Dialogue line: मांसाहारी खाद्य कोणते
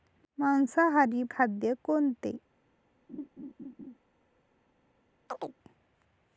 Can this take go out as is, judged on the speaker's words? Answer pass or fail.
pass